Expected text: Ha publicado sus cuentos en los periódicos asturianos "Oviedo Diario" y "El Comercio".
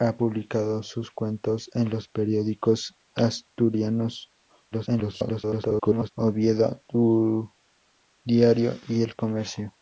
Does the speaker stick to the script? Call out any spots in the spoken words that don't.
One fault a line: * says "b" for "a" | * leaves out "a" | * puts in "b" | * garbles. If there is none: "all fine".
* garbles